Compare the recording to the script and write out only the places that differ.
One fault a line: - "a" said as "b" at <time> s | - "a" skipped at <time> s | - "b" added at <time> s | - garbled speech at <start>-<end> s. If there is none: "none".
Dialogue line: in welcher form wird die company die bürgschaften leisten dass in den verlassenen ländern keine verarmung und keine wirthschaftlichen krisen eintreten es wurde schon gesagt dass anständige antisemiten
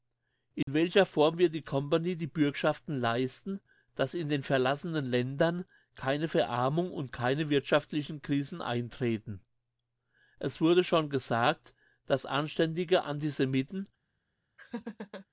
none